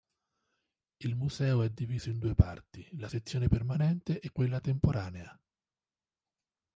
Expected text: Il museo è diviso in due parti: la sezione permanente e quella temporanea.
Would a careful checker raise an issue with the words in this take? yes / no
no